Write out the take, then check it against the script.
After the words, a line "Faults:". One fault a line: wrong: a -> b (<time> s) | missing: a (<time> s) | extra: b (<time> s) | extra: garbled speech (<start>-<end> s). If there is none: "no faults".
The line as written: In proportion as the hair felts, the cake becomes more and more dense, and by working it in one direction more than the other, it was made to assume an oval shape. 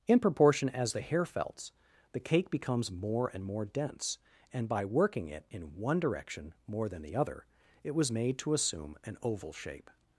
In proportion as the hair felts, the cake becomes more and more dense, and by working it in one direction more than the other, it was made to assume an oval shape.
Faults:
no faults